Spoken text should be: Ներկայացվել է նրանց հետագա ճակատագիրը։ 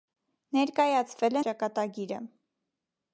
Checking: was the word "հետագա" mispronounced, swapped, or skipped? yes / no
yes